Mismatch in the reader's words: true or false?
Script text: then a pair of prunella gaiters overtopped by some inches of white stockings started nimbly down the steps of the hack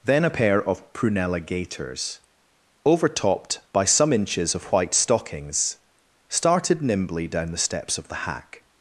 false